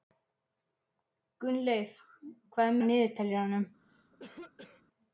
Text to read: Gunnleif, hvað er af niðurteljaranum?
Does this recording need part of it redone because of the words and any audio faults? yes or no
yes